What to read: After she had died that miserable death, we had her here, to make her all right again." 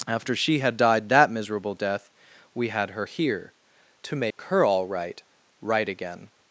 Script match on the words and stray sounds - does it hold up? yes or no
no